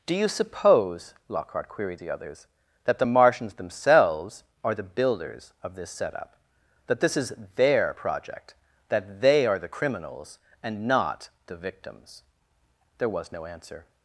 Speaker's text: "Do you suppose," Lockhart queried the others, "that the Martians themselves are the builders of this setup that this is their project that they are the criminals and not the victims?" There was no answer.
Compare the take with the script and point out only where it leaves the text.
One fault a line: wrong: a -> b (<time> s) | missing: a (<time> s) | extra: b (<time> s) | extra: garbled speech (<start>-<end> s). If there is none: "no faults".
no faults